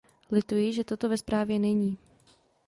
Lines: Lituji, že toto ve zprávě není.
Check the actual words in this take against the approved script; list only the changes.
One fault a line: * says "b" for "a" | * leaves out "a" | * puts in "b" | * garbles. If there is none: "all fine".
all fine